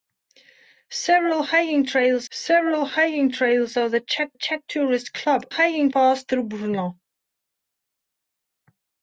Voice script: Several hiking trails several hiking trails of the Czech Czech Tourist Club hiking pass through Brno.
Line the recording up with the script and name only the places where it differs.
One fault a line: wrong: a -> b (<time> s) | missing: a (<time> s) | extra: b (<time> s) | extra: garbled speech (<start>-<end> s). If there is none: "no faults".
no faults